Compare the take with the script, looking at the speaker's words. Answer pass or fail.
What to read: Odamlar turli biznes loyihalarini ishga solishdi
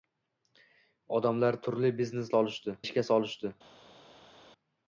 fail